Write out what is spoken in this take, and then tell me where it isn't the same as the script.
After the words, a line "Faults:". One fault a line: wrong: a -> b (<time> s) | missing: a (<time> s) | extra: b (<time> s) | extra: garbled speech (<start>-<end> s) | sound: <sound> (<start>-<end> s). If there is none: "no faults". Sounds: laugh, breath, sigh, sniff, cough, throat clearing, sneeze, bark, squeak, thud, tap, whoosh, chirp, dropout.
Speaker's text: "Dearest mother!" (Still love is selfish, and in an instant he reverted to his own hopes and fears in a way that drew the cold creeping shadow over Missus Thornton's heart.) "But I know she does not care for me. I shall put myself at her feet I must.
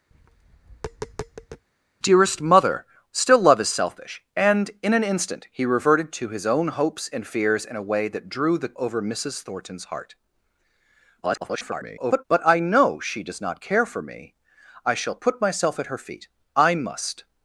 "Dearest mother!" (Still love is selfish, and in an instant he reverted to his own hopes and fears in a way that drew the over Missus Thornton's heart.) [garbled] "But I know she does not care for me. I shall put myself at her feet I must.
Faults:
sound: tap (0.1-1.6 s)
missing: cold creeping shadow (8.7 s)
extra: garbled speech (11.2-12.2 s)